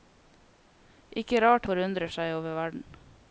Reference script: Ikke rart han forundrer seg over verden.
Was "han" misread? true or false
true